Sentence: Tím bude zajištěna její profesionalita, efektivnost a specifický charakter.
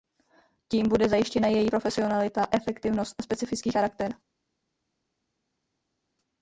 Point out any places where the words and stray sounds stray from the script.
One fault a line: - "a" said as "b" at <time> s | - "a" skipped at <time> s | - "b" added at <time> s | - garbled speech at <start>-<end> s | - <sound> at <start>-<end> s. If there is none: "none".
none